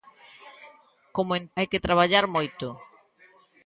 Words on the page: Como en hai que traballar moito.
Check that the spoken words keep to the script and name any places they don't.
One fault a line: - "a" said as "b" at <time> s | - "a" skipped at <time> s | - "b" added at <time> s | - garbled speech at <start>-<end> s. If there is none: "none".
none